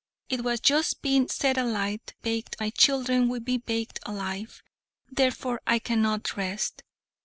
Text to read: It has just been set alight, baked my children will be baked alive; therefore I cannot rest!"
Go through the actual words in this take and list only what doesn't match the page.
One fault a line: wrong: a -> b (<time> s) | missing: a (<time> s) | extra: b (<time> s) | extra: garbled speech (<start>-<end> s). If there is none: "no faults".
no faults